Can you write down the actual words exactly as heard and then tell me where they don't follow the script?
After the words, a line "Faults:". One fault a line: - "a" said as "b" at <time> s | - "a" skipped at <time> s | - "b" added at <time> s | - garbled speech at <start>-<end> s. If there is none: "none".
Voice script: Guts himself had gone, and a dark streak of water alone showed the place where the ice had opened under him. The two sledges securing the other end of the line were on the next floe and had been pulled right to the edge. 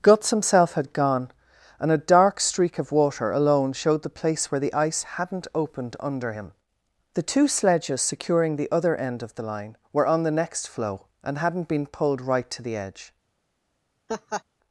Guts himself had gone, and a dark streak of water alone showed the place where the ice hadn't opened under him. The two sledges securing the other end of the line were on the next floe and hadn't been pulled right to the edge.
Faults:
- "had" said as "hadn't" at 5.0 s
- "had" said as "hadn't" at 11.4 s